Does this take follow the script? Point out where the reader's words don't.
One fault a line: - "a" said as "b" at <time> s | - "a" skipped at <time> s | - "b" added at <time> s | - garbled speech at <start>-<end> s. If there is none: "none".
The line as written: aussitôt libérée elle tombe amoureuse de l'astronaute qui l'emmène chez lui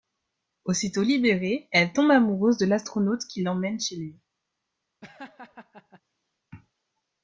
none